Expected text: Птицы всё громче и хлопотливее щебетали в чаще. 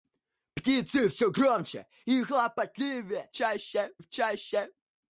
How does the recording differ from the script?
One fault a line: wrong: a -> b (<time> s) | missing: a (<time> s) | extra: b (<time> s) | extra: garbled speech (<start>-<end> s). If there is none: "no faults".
wrong: щебетали -> чаще (3.3 s)